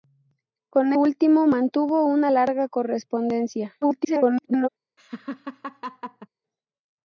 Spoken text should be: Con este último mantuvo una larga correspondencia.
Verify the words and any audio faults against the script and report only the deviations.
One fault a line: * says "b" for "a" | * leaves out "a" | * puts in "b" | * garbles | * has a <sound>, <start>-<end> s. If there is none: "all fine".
* leaves out "este"
* garbles
* has a laugh, 5.0-6.3 s